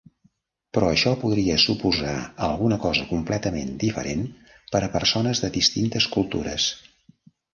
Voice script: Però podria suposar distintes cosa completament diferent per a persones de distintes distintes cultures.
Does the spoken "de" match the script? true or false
true